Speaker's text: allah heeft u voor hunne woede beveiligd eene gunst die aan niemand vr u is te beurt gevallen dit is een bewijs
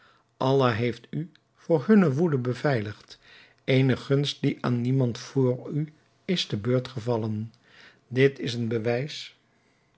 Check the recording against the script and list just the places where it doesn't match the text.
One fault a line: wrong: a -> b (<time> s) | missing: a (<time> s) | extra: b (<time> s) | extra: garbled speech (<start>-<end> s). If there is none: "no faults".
no faults